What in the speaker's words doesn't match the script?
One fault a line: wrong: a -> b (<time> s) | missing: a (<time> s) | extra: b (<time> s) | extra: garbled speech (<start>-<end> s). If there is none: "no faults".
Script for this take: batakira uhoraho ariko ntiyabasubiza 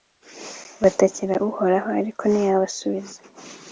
no faults